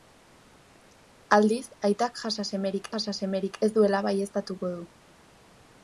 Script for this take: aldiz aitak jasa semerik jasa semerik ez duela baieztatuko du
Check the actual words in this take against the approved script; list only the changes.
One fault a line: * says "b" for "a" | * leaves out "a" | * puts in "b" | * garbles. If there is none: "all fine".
all fine